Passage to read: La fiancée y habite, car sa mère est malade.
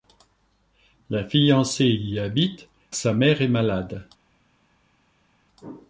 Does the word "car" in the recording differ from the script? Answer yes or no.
yes